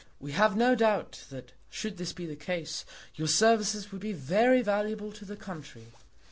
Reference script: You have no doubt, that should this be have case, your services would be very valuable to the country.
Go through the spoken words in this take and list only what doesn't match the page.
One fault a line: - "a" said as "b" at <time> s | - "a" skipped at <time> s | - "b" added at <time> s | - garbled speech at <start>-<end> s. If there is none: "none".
- "You" said as "We" at 0.2 s
- "have" said as "the" at 2.2 s